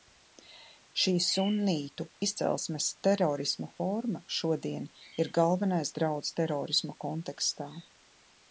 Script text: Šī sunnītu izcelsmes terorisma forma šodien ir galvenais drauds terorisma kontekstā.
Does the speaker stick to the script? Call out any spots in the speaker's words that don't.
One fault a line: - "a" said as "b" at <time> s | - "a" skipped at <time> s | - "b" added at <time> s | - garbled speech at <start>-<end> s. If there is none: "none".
none